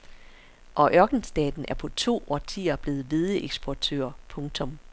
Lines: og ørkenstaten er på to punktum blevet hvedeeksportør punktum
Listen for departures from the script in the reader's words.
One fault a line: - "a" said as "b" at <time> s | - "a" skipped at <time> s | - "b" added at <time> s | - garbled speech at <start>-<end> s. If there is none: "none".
- "punktum" said as "årtier" at 2.3 s